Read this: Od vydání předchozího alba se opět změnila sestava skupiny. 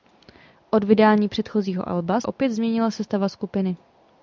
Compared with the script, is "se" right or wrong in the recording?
wrong